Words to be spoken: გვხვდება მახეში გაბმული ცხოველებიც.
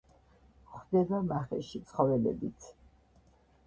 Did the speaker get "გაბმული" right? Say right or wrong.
wrong